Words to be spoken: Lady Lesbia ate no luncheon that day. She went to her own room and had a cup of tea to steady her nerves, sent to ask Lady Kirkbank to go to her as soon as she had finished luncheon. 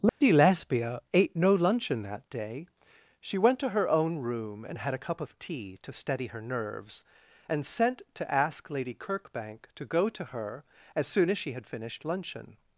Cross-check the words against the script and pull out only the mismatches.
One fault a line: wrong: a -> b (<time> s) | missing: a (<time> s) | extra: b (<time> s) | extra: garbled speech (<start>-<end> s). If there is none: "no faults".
extra: and (7.5 s)